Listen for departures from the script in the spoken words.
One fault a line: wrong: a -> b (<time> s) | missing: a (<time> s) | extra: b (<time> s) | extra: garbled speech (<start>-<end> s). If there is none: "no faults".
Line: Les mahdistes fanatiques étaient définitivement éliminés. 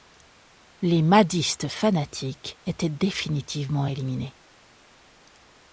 no faults